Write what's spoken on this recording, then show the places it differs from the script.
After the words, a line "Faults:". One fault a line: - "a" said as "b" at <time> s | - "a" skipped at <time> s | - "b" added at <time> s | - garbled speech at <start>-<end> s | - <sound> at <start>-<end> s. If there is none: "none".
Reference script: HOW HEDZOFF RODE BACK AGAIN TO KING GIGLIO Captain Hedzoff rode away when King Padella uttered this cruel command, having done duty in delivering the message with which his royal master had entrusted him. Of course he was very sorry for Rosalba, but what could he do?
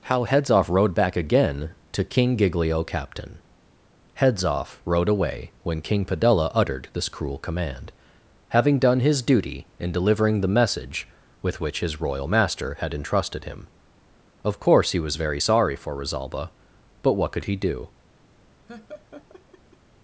HOW HEDZOFF RODE BACK AGAIN TO KING GIGLIO Captain Hedzoff rode away when King Padella uttered this cruel command, having done his duty in delivering the message with which his royal master had entrusted him. Of course he was very sorry for Rosalba, but what could he do?
Faults:
- "his" added at 9.0 s
- laugh at 18.7-19.8 s